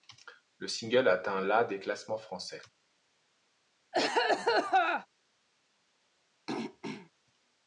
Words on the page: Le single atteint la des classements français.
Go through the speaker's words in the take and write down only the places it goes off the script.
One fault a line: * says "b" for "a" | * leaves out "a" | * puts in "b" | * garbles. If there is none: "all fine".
all fine